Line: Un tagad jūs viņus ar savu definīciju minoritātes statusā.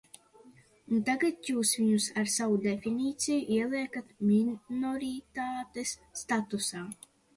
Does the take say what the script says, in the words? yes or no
no